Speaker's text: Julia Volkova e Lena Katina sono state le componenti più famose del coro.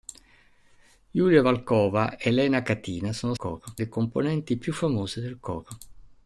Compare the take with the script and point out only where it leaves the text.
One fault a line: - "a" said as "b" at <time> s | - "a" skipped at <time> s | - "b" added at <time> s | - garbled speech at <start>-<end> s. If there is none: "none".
- "state" said as "coro" at 3.4 s